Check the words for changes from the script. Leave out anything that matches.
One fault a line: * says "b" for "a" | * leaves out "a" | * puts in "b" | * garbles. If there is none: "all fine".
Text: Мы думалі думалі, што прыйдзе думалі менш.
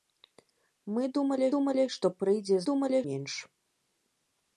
all fine